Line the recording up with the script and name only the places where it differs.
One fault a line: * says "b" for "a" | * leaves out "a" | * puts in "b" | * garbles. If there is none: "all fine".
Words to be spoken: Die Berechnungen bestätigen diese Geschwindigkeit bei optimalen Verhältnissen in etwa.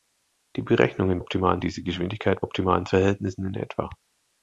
* says "optimalen" for "bestätigen"
* leaves out "bei"